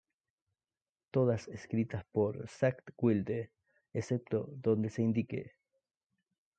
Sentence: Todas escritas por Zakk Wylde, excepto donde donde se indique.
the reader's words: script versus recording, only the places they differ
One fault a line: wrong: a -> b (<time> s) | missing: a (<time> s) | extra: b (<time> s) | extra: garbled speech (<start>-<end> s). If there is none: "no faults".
missing: donde (4.9 s)